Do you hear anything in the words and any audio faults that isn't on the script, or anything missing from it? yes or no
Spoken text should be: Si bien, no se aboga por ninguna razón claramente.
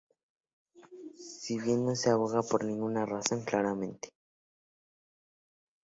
no